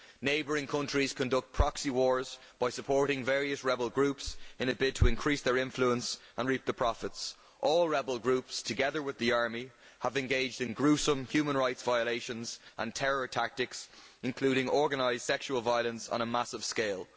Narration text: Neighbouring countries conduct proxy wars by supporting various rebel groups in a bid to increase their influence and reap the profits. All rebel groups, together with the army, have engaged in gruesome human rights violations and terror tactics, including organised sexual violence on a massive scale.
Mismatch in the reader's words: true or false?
false